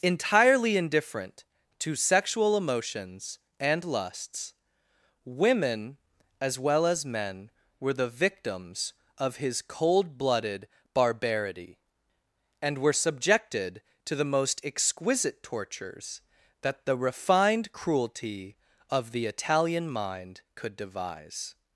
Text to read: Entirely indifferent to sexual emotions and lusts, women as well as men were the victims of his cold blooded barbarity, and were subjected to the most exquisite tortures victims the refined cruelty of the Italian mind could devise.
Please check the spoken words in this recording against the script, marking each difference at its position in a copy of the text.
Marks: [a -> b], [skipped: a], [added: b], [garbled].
Entirely indifferent to sexual emotions and lusts, women as well as men were the victims of his cold blooded barbarity, and were subjected to the most exquisite tortures [victims -> that] the refined cruelty of the Italian mind could devise.